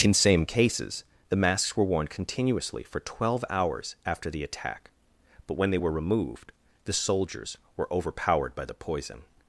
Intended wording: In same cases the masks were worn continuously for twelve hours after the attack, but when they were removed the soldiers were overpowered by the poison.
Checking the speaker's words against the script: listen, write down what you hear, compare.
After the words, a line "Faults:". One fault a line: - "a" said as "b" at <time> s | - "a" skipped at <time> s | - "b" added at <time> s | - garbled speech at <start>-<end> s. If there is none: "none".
In same cases the masks were worn continuously for twelve hours after the attack, but when they were removed the soldiers were overpowered by the poison.
Faults:
none